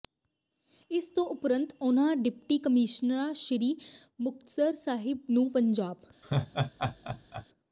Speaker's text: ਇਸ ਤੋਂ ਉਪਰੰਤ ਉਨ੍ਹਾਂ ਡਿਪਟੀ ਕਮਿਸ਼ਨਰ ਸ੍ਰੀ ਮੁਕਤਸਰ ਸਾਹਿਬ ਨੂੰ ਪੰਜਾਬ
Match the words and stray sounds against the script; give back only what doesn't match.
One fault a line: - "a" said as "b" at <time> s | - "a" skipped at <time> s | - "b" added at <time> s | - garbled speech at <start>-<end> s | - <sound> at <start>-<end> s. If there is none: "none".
- laugh at 6.2-7.5 s